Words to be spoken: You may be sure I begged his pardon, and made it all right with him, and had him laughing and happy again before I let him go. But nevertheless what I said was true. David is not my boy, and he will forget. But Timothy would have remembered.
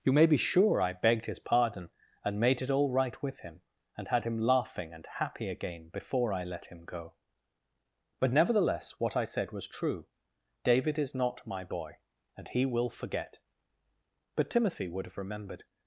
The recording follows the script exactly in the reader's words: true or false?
true